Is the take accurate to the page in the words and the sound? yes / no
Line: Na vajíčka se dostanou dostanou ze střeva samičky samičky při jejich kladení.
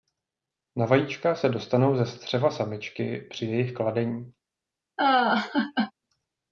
no